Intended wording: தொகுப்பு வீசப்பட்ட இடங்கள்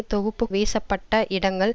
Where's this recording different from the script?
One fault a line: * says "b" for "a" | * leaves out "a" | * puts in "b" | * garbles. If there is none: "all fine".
all fine